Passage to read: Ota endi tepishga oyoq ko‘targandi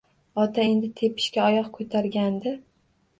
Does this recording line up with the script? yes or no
yes